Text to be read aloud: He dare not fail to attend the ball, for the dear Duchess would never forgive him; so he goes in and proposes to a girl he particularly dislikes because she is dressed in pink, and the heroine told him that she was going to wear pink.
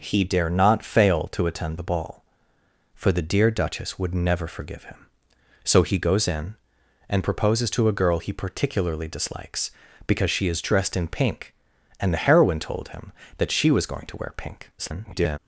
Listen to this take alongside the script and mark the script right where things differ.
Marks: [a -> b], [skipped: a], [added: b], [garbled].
He dare not fail to attend the ball, for the dear Duchess would never forgive him; so he goes in and proposes to a girl he particularly dislikes because she is dressed in pink, and the heroine told him that she was going to wear pink. [garbled]